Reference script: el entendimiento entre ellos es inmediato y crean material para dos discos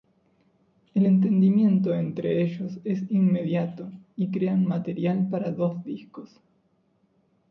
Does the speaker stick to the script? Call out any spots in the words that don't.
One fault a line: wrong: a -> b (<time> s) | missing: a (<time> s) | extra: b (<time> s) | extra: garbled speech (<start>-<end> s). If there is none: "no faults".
no faults